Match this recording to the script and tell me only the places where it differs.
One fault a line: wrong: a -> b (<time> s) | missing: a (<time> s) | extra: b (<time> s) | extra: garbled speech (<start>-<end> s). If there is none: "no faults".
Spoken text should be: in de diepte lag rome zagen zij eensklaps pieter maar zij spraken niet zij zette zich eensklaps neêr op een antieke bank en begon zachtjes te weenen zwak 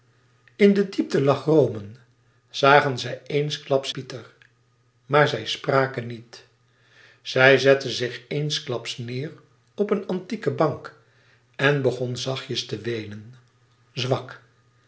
no faults